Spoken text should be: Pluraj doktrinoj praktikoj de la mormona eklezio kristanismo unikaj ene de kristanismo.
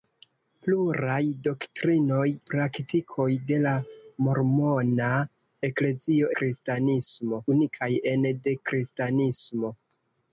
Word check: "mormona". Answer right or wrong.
right